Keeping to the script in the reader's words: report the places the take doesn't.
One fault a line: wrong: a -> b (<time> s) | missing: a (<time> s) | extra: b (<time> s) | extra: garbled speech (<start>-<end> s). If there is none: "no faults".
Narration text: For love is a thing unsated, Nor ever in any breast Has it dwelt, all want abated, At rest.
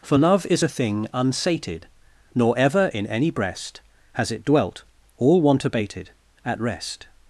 no faults